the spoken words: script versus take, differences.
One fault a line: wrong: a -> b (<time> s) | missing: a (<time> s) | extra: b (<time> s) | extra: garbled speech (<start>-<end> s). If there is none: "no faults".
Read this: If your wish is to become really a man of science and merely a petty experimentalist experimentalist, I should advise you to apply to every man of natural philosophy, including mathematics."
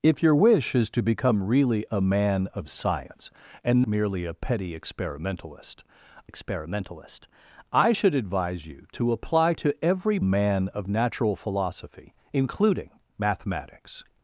no faults